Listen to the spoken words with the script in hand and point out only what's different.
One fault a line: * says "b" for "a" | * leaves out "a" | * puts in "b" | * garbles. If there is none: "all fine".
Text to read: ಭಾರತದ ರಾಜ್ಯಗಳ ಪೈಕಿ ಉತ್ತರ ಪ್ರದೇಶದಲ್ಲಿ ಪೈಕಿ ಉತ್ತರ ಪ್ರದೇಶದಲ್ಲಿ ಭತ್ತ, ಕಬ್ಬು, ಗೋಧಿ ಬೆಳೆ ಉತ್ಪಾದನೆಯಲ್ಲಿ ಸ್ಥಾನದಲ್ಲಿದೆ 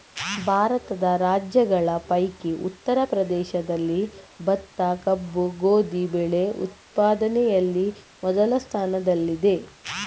* leaves out "ಪೈಕಿ ಉತ್ತರ ಪ್ರದೇಶದಲ್ಲಿ"
* puts in "ಮೊದಲ"